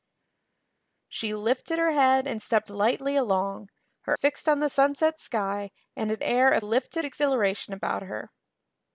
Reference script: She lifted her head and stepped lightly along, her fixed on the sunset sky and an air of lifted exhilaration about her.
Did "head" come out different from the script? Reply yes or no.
no